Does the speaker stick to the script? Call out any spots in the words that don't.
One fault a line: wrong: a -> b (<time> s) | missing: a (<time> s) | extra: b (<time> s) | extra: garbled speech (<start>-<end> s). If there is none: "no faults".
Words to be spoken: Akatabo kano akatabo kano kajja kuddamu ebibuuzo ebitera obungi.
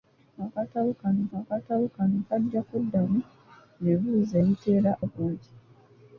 no faults